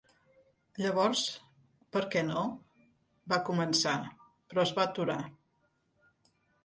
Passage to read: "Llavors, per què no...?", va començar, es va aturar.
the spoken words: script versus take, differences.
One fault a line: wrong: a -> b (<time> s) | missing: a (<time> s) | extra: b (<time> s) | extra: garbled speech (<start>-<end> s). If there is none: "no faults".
extra: però (4.5 s)